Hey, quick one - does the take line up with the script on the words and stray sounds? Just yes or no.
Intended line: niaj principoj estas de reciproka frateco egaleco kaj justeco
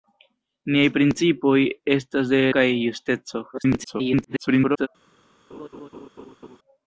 no